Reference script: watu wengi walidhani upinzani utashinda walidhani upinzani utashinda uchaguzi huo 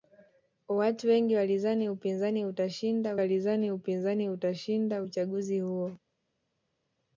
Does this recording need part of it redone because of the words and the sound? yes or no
no